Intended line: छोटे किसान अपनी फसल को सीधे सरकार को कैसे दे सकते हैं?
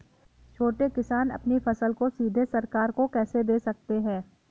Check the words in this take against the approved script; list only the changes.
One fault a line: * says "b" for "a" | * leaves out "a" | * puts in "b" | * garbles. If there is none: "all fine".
all fine